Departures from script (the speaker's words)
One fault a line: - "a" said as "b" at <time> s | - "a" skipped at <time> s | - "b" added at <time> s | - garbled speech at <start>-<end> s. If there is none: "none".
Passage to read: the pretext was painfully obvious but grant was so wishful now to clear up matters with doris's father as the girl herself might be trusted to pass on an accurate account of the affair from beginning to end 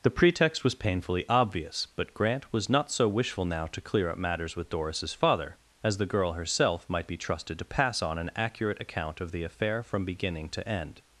- "not" added at 2.7 s